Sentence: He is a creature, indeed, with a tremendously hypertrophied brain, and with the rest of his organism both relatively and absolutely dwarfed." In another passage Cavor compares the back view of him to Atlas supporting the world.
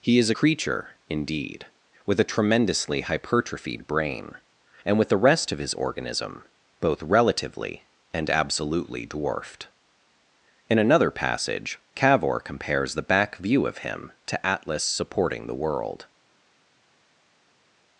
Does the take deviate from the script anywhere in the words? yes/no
no